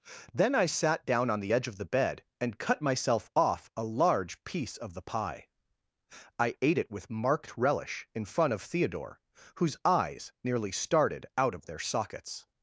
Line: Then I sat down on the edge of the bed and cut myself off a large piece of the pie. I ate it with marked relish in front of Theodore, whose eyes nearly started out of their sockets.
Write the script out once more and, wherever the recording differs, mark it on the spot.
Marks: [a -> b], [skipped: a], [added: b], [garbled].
Then I sat down on the edge of the bed and cut myself off a large piece of the pie. I ate it with marked relish in front of Theodore, whose eyes nearly started out of their sockets.